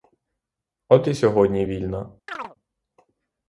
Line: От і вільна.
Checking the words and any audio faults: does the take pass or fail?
fail